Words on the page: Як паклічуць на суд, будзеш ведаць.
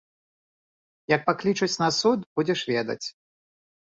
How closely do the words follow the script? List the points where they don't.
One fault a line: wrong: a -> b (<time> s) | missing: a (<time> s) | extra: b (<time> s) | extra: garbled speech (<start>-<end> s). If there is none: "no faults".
no faults